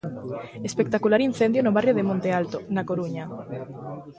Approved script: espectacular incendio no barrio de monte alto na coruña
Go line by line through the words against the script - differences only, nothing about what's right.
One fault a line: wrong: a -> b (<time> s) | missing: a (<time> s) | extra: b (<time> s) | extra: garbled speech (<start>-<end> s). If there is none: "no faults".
no faults